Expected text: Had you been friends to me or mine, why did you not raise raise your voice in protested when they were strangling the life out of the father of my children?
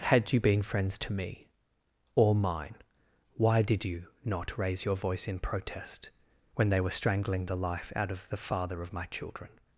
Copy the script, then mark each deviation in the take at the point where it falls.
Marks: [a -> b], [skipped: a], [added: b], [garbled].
Had you been friends to me or mine, why did you not raise [skipped: raise] your voice in [protested -> protest] when they were strangling the life out of the father of my children?